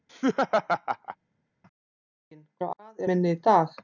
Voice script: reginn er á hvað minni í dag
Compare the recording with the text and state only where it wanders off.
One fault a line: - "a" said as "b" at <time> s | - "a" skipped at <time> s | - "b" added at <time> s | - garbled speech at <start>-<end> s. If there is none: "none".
none